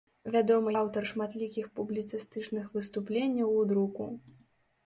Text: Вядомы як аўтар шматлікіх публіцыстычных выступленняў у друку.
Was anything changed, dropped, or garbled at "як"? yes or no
yes